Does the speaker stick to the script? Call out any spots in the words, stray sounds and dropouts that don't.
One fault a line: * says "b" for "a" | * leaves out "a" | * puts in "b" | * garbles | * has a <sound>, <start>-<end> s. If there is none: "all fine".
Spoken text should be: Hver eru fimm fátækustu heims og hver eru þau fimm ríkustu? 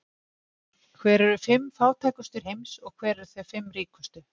all fine